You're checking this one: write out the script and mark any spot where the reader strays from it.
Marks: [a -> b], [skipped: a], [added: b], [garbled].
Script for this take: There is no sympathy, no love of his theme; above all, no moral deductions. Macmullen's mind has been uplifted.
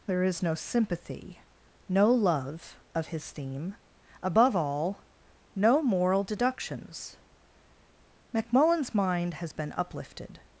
There is no sympathy, no love of his theme; above all, no moral deductions. Macmullen's mind has been uplifted.